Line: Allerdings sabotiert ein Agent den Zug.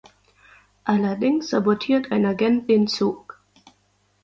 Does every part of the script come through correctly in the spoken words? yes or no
yes